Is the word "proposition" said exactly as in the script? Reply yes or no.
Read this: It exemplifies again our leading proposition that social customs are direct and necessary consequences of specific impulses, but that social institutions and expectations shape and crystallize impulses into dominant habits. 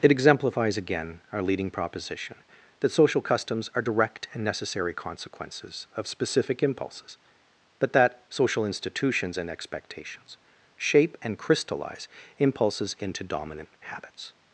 yes